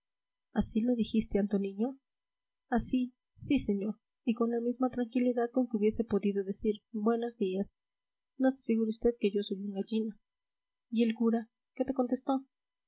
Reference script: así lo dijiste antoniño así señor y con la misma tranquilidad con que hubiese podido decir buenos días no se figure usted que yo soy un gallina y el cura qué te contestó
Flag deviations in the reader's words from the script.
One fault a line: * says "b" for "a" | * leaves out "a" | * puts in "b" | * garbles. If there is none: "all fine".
* puts in "sí"